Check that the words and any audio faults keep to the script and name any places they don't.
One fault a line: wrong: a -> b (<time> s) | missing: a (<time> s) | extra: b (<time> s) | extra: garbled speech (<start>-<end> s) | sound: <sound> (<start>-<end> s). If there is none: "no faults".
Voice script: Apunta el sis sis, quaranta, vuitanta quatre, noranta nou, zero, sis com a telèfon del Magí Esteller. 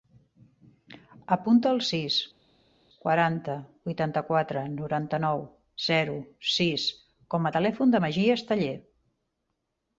missing: sis (2.2 s)